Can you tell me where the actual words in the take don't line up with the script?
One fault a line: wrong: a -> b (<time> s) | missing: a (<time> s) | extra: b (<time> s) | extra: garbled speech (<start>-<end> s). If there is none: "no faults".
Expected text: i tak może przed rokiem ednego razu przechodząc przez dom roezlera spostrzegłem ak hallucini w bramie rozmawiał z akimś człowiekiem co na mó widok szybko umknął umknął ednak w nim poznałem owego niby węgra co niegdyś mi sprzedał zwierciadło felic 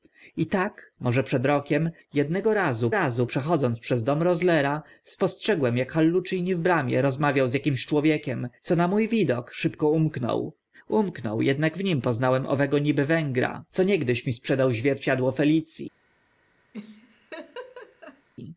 extra: razu (2.9 s)